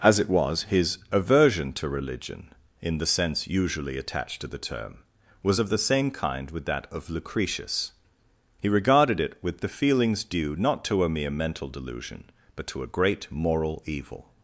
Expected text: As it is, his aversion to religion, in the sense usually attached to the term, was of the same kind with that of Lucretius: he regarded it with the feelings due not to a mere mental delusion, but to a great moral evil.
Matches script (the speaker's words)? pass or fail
fail